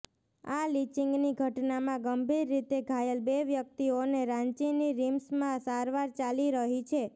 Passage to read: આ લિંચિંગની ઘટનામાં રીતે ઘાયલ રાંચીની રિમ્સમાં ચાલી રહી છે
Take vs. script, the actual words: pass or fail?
fail